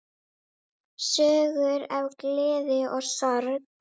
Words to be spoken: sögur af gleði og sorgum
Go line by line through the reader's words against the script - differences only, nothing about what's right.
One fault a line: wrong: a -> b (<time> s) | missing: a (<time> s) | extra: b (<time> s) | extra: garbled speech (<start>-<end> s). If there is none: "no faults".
no faults